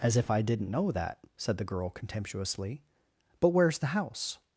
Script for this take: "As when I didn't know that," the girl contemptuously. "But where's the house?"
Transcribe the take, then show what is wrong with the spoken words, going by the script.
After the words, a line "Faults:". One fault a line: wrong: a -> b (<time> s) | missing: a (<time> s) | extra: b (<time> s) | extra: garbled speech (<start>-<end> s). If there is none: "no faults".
"As if I didn't know that," said the girl contemptuously. "But where's the house?"
Faults:
wrong: when -> if (0.2 s)
extra: said (1.4 s)